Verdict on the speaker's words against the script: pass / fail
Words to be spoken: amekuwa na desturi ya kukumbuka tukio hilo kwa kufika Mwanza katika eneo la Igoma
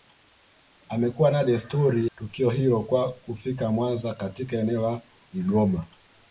fail